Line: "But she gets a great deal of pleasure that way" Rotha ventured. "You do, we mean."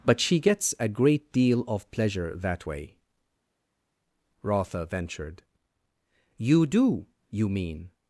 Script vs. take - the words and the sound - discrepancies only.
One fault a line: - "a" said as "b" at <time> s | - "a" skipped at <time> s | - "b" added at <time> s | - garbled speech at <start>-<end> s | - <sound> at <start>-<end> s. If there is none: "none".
- "we" said as "you" at 7.3 s